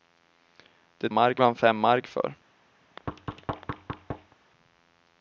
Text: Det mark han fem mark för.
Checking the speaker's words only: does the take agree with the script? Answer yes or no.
yes